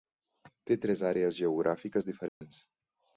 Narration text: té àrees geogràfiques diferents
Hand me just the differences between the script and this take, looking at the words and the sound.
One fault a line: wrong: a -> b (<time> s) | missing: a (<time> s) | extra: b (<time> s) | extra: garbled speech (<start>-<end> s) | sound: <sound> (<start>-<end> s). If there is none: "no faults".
extra: tres (0.8 s)
sound: dropout (2.3-2.4 s)